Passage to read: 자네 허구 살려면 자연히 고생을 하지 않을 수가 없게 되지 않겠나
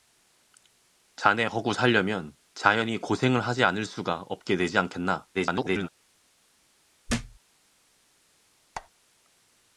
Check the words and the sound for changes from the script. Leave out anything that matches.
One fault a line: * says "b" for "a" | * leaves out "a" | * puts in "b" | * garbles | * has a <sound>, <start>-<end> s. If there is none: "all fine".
* garbles
* has a thud, 7.1-7.4 s
* has a squeak, 8.7-8.9 s